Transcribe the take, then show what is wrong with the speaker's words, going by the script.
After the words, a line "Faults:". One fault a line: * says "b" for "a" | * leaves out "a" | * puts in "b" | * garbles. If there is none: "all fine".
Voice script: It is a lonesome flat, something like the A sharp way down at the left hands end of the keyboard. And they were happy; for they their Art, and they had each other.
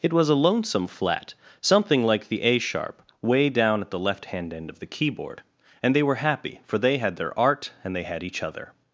It was a lonesome flat, something like the A sharp way down at the left hand end of the keyboard. And they were happy; for they had their Art, and they had each other.
Faults:
* says "was" for "is"
* says "hand" for "hands"
* puts in "had"